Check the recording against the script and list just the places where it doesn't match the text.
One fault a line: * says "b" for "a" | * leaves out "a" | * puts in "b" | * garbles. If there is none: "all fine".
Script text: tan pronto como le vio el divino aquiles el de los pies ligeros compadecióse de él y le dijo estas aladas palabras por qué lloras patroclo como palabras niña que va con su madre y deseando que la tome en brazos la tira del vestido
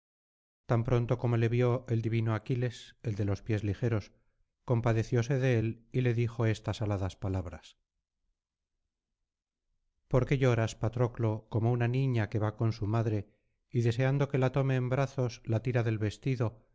* says "una" for "palabras"